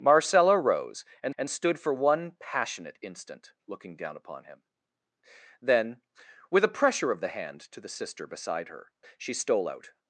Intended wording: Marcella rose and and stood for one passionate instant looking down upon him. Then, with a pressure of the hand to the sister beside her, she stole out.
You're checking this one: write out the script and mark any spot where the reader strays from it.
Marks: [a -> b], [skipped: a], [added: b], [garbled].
Marcella rose and and stood for one passionate instant looking down upon him. Then, with a pressure of the hand to the sister beside her, she stole out.